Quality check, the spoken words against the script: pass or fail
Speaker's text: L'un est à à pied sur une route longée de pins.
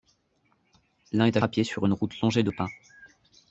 pass